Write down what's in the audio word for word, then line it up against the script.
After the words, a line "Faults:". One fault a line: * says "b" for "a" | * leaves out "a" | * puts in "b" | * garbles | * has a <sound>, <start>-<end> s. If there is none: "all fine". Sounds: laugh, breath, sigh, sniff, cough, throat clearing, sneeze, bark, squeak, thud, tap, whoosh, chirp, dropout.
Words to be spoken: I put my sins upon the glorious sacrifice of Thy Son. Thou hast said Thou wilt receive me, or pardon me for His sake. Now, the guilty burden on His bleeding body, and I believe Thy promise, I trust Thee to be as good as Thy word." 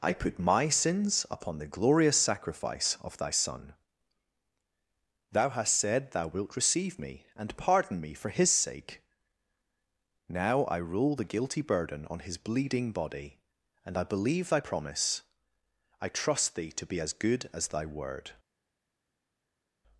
I put my sins upon the glorious sacrifice of Thy Son. Thou hast said Thou wilt receive me, and pardon me for His sake. Now, I roll the guilty burden on His bleeding body, and I believe Thy promise, I trust Thee to be as good as Thy word."
Faults:
* says "and" for "or"
* puts in "I roll"